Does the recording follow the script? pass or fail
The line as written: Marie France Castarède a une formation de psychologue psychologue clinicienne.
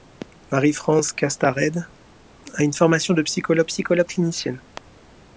pass